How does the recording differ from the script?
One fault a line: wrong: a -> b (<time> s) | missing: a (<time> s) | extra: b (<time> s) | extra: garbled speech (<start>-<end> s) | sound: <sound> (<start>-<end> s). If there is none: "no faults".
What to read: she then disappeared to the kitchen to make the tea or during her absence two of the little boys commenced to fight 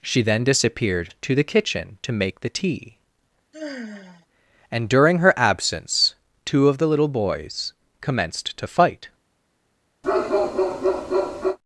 sound: sigh (3.5-4.3 s)
wrong: or -> and (4.7 s)
sound: bark (10.0-11.6 s)